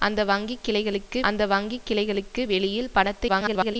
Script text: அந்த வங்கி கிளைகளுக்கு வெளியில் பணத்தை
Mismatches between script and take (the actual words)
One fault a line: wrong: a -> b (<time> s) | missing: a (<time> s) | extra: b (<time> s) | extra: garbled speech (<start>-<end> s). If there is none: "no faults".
extra: அந்த வங்கி கிளைகளுக்கு (1.2 s)
extra: garbled speech (3.3-3.8 s)